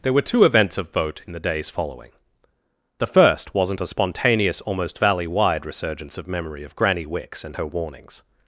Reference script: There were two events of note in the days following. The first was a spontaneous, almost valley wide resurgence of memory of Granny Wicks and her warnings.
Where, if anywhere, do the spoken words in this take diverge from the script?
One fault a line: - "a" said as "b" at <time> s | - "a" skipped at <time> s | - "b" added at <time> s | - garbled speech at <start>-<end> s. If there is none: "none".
- "note" said as "vote" at 0.9 s
- "was" said as "wasn't" at 3.5 s